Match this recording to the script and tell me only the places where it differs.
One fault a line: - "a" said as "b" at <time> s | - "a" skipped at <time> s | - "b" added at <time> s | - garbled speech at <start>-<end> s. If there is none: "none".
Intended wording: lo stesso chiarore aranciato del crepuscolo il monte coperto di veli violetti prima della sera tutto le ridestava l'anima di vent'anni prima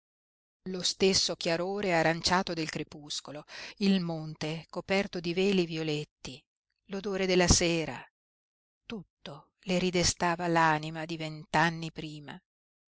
- "prima" said as "l'odore" at 6.9 s